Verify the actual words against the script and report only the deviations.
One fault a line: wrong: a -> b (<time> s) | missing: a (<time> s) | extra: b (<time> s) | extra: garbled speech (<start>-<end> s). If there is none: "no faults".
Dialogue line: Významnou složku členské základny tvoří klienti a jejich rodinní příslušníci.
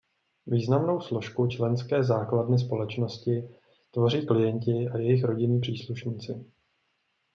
extra: společnosti (2.6 s)